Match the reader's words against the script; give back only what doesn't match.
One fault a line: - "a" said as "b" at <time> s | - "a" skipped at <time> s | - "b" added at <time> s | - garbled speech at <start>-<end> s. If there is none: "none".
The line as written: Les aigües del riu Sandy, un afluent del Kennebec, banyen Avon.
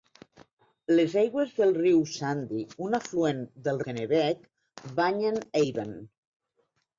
none